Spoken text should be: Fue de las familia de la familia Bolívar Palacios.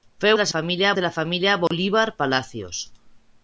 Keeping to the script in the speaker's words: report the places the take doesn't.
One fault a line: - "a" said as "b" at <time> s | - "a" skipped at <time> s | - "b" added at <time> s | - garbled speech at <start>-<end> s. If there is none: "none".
none